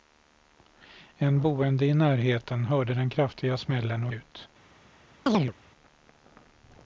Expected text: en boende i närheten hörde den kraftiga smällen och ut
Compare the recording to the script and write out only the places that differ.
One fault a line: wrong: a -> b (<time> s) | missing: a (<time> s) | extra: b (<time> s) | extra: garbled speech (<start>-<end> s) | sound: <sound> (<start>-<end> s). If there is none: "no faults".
sound: chirp (5.3-5.5 s)